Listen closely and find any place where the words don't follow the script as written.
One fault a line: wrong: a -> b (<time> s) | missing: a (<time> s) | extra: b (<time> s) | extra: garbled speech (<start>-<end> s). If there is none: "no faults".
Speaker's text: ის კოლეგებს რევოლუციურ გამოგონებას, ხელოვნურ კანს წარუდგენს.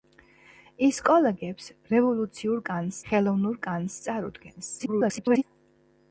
wrong: გამოგონებას -> კანს (2.7 s)
extra: garbled speech (4.8-5.4 s)